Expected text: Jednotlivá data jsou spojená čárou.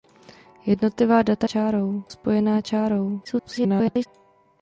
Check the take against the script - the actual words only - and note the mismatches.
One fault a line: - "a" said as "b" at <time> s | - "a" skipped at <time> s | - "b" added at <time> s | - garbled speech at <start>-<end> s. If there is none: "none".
- "jsou" said as "čárou" at 1.4 s
- garbled speech at 3.2-4.1 s